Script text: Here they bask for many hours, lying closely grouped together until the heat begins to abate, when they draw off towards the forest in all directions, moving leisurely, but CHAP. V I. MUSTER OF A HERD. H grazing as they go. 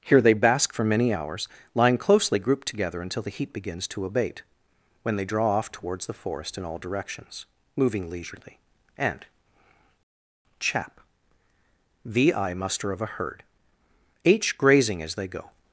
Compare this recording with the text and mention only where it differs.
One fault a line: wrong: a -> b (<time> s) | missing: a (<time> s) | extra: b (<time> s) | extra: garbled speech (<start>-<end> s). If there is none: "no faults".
wrong: but -> and (9.0 s)